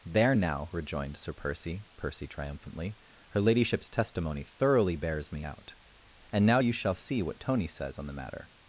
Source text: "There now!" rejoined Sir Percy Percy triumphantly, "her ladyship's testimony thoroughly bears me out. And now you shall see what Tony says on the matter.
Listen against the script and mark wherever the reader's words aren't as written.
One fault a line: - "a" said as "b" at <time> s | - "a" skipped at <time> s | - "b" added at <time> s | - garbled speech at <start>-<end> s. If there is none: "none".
none